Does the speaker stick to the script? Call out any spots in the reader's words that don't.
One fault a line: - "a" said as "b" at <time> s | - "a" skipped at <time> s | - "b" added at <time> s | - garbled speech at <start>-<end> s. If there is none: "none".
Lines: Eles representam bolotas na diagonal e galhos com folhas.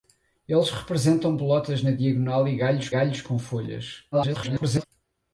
- "galhos" added at 2.9 s
- garbled speech at 4.1-4.9 s